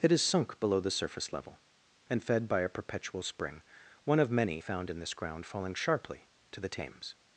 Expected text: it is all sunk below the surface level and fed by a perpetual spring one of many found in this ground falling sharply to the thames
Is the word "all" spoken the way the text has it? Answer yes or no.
no